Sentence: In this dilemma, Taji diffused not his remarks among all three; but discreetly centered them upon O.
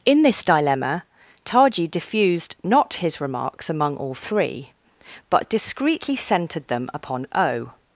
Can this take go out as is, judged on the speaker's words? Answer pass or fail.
pass